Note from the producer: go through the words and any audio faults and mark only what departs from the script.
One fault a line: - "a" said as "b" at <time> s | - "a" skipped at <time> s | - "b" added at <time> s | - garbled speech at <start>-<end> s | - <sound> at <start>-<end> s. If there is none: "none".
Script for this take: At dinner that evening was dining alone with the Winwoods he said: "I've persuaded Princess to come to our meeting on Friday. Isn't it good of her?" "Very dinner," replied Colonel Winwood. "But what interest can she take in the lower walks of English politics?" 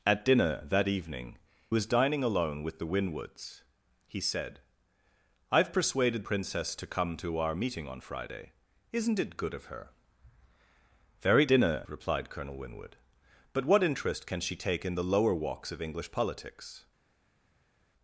none